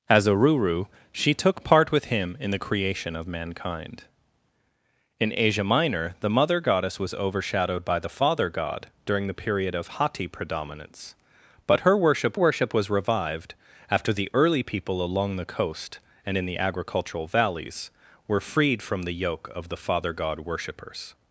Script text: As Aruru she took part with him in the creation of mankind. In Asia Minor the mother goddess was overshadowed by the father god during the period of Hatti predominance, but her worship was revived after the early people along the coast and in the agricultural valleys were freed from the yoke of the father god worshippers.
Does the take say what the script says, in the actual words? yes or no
no